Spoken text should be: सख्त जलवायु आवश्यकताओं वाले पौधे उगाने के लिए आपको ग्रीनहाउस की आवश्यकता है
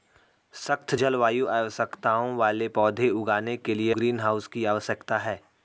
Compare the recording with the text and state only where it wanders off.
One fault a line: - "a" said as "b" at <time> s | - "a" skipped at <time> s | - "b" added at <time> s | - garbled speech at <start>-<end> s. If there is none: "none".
- "आपको" skipped at 3.9 s